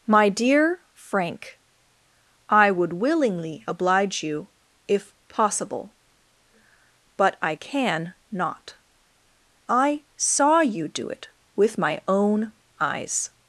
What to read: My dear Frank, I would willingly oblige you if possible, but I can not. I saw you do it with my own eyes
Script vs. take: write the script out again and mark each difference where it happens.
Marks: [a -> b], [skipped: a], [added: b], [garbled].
My dear Frank, I would willingly oblige you if possible, but I can not. I saw you do it with my own eyes